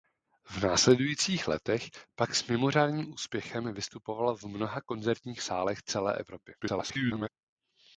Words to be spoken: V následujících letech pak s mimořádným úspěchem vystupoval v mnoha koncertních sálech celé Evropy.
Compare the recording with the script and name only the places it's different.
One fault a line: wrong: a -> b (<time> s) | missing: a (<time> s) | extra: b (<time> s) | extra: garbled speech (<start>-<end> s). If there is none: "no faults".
extra: garbled speech (6.6-7.3 s)